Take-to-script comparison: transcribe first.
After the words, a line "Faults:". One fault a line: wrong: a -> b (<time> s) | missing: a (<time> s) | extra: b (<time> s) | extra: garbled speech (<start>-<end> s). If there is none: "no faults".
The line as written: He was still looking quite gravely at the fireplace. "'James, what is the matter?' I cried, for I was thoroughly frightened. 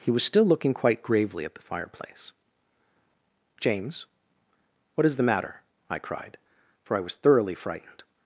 He was still looking quite gravely at the fireplace. "'James, what is the matter?' I cried, for I was thoroughly frightened.
Faults:
no faults